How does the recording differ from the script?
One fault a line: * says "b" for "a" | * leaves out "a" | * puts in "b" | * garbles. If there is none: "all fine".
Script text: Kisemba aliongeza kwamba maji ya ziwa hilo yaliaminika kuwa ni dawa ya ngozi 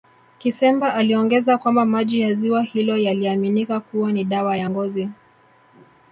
all fine